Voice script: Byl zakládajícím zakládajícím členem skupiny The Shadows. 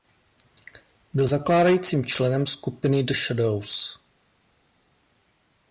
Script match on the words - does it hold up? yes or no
no